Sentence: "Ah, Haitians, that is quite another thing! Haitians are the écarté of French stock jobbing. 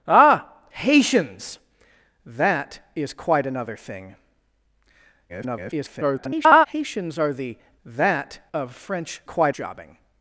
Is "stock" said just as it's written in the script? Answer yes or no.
no